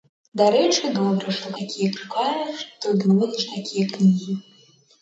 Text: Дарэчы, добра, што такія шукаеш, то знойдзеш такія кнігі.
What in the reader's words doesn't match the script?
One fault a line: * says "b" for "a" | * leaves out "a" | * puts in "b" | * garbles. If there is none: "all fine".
all fine